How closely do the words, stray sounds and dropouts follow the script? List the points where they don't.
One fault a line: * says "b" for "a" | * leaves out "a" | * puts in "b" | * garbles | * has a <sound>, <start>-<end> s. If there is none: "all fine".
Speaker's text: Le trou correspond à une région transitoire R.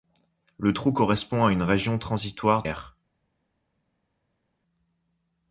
all fine